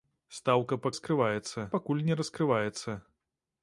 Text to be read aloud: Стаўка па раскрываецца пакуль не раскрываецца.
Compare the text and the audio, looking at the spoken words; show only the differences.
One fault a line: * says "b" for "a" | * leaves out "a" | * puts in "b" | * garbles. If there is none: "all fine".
all fine